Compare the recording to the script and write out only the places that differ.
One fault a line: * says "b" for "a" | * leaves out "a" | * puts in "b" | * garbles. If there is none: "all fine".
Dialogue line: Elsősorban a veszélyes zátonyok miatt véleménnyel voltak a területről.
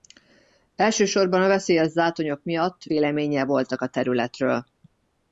all fine